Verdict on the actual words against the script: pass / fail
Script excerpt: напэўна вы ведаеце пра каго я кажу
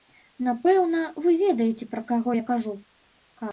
pass